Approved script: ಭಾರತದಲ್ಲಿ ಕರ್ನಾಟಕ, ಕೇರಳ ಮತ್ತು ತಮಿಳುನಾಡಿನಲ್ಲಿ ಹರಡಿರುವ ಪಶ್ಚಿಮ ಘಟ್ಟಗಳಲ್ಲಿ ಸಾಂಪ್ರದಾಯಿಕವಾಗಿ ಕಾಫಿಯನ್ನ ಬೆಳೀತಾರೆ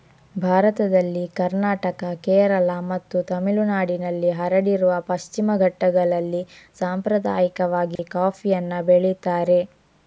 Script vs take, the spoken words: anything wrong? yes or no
no